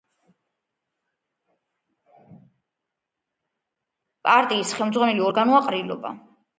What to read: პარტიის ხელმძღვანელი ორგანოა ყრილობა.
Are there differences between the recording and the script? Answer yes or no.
no